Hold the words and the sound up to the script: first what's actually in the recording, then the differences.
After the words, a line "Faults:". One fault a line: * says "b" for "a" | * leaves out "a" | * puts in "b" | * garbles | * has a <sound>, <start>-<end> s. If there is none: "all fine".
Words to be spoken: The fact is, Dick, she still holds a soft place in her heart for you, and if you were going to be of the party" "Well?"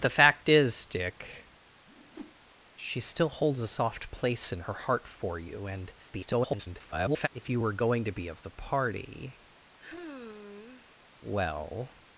The fact is, Dick, she still holds a soft place in her heart for you, and [garbled] if you were going to be of the party" "Well?"
Faults:
* has a whoosh, 1.9-2.4 s
* garbles
* has a sigh, 9.8-11.0 s